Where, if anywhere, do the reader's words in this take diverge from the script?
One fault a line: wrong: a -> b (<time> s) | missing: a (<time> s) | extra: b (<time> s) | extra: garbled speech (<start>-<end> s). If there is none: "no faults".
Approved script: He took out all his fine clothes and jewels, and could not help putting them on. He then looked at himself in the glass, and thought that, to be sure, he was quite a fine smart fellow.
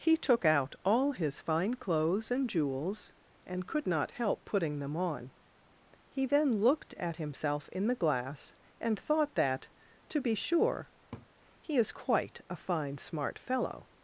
wrong: was -> is (11.8 s)